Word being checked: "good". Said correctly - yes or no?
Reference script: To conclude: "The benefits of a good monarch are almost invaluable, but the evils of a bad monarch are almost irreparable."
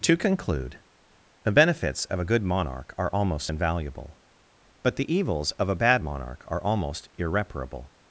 yes